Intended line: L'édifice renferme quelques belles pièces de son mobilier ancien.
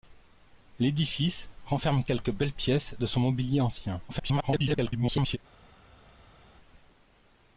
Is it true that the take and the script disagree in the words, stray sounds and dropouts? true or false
true